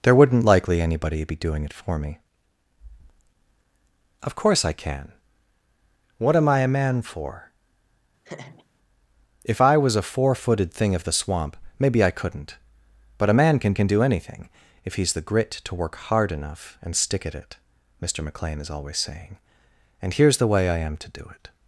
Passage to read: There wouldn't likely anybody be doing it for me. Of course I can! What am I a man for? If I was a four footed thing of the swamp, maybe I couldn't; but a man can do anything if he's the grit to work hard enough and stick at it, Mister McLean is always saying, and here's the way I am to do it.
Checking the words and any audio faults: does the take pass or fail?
fail